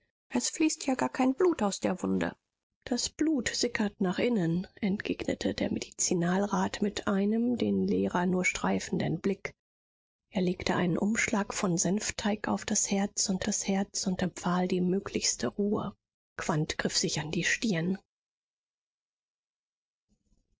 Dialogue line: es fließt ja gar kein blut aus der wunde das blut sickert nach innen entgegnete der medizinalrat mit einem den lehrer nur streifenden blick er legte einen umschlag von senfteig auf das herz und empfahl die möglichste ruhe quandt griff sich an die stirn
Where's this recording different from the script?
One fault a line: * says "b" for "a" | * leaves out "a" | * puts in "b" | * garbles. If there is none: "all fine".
* puts in "das herz und"